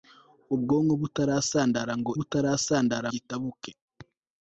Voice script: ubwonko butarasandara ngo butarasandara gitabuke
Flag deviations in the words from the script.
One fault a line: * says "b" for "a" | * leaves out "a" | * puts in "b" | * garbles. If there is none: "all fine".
all fine